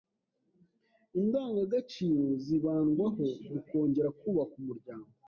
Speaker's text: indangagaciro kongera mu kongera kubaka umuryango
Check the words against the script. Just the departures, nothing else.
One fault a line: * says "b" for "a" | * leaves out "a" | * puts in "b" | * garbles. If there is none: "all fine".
* says "zibandwaho" for "kongera"